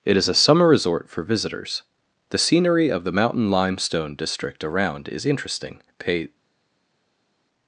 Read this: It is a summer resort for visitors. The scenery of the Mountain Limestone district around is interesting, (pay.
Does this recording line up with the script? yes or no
yes